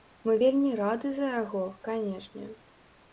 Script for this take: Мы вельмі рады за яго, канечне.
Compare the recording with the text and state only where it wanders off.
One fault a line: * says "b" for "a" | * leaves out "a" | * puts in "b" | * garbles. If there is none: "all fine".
all fine